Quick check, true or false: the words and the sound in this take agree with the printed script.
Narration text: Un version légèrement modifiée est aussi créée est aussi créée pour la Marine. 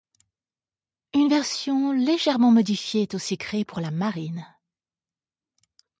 false